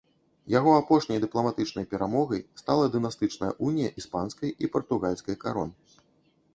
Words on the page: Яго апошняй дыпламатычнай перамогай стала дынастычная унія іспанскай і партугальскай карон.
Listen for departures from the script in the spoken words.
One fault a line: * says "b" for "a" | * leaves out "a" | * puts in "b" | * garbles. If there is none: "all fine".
all fine